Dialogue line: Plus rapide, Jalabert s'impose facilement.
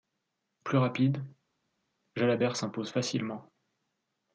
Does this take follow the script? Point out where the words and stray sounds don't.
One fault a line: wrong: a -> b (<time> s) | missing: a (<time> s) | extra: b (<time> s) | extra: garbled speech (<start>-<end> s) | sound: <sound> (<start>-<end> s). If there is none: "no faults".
no faults